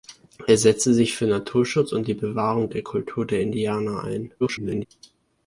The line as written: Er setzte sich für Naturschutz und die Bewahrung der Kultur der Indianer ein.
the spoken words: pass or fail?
fail